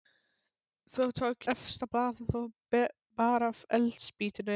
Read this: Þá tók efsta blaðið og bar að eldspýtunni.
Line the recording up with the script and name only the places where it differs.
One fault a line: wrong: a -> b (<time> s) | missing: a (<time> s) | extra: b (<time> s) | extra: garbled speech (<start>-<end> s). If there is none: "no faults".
no faults